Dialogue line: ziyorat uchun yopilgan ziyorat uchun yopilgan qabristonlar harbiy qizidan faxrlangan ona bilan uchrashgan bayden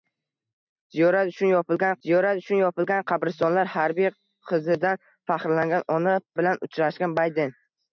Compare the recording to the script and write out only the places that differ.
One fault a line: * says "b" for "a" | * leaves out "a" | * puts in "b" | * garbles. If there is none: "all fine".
all fine